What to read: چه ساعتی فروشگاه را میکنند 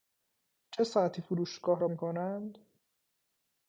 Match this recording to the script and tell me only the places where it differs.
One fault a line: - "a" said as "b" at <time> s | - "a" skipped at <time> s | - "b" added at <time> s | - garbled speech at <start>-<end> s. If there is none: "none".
none